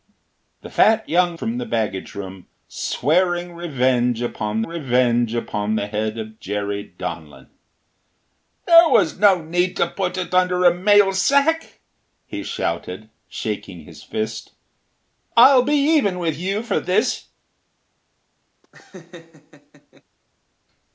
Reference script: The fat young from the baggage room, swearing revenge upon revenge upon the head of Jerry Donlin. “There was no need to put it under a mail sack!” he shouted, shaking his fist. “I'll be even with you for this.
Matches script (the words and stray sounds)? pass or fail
fail